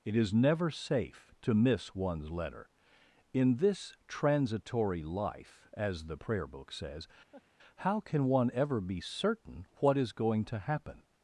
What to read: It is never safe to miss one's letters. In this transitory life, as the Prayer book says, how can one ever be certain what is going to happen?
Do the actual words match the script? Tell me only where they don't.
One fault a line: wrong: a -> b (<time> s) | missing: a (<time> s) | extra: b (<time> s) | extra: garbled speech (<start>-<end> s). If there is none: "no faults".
wrong: letters -> letter (2.3 s)